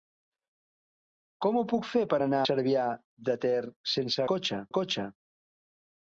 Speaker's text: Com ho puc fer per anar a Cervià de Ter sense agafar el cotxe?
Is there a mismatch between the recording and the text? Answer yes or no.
yes